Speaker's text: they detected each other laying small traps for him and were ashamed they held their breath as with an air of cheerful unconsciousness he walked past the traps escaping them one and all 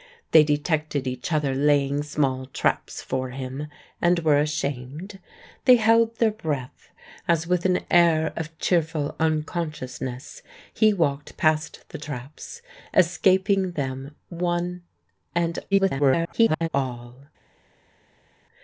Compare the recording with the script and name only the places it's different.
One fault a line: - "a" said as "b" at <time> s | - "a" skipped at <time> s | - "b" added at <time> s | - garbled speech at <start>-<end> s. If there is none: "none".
- garbled speech at 15.7-16.7 s